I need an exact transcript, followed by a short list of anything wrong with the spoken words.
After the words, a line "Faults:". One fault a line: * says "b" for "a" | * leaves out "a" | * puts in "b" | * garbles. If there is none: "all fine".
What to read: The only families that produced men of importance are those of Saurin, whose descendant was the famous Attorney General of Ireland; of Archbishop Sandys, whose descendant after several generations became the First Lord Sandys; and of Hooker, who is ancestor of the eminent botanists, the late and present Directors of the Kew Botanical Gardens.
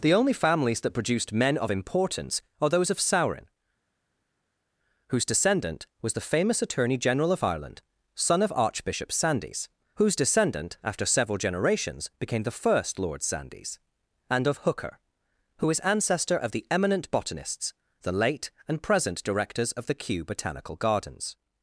The only families that produced men of importance are those of Saurin, whose descendant was the famous Attorney General of Ireland; son of Archbishop Sandys, whose descendant after several generations became the First Lord Sandys; and of Hooker, who is ancestor of the eminent botanists, the late and present Directors of the Kew Botanical Gardens.
Faults:
* puts in "son"